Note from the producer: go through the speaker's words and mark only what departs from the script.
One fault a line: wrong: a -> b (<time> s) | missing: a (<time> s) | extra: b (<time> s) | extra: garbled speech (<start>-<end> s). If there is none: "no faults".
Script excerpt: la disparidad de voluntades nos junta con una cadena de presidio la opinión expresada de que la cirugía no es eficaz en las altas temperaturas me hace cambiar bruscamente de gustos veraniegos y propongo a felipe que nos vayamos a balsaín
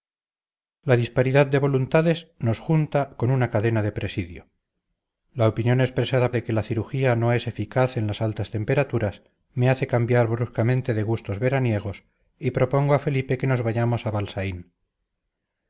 no faults